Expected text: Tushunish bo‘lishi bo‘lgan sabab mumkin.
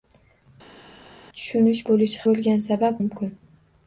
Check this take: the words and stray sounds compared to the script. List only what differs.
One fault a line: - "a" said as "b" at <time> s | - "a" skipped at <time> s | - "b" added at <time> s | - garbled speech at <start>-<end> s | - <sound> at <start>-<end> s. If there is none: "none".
none